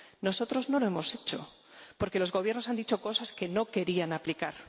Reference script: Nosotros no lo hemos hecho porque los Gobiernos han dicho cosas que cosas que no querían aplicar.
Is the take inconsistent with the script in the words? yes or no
yes